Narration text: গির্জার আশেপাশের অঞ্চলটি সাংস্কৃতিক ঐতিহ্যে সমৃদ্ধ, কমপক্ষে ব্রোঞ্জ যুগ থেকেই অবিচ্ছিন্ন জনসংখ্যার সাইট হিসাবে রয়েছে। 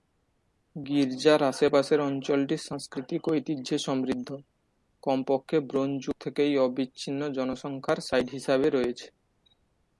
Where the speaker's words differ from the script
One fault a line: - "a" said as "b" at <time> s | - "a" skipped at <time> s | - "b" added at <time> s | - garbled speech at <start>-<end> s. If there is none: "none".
none